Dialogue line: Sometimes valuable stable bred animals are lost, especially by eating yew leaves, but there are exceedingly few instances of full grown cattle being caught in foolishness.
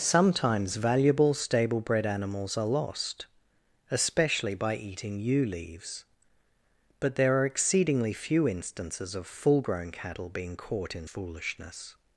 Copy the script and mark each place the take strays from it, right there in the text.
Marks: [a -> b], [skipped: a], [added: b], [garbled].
Sometimes valuable stable bred animals are lost, especially by eating yew leaves, but there are exceedingly few instances of full grown cattle being caught in foolishness.